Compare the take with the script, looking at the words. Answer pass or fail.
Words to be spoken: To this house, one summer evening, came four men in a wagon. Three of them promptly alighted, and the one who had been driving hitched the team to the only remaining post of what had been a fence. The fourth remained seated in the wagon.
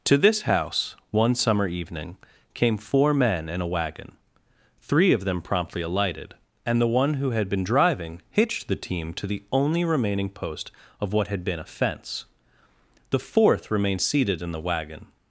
pass